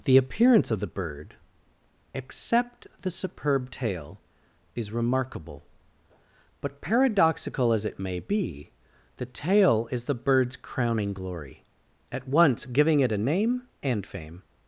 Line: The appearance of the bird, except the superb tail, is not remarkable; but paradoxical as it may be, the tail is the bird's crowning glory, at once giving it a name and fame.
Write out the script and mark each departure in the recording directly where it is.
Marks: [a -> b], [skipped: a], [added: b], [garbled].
The appearance of the bird, except the superb tail, is [skipped: not] remarkable; but paradoxical as it may be, the tail is the bird's crowning glory, at once giving it a name and fame.